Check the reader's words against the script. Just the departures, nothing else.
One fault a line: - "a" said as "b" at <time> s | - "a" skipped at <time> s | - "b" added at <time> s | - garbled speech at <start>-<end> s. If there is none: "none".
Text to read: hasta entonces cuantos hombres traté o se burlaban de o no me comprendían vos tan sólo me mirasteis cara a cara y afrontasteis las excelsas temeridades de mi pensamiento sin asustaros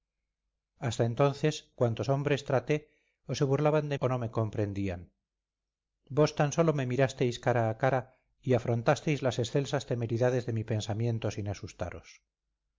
none